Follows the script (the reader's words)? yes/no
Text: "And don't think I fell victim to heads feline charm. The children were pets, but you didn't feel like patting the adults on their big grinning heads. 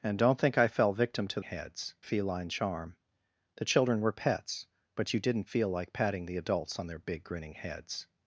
yes